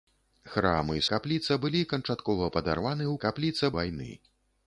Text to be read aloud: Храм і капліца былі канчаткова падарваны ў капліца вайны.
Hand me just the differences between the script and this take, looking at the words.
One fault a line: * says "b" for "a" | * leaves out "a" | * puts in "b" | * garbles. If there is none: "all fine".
all fine